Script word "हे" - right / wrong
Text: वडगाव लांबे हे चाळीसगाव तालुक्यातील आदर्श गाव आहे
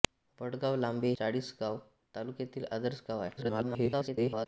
wrong